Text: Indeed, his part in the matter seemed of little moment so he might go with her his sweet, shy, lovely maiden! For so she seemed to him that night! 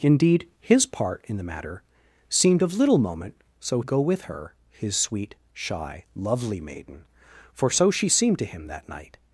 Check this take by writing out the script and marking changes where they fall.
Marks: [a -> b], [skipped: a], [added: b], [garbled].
Indeed, his part in the matter seemed of little moment so [skipped: he might] go with her his sweet, shy, lovely maiden! For so she seemed to him that night!